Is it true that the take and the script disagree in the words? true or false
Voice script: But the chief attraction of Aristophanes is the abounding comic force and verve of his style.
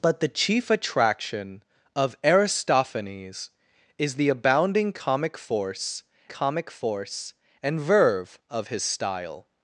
true